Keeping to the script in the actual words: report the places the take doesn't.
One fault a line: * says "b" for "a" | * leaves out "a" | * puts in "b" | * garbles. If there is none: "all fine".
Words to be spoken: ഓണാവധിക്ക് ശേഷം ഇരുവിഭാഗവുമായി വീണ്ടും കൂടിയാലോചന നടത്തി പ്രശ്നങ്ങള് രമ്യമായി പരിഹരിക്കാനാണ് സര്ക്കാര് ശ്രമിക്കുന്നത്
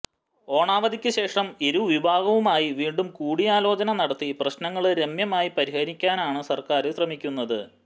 all fine